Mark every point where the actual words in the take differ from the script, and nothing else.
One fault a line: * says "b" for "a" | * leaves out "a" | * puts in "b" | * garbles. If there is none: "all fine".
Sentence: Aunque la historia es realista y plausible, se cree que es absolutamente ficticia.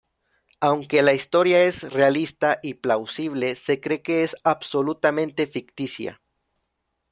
all fine